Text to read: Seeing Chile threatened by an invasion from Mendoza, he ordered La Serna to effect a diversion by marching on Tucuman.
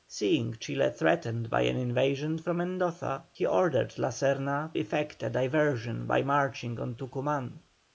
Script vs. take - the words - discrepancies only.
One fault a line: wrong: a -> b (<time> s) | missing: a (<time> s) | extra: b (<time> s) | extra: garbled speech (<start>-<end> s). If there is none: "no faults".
missing: to (4.8 s)